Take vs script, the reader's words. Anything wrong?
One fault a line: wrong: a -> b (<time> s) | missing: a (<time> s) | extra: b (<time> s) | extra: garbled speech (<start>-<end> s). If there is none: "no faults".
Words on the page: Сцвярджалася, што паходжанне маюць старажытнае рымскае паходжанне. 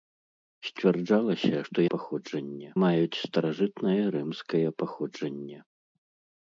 no faults